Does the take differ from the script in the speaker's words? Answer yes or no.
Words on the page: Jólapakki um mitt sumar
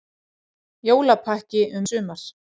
yes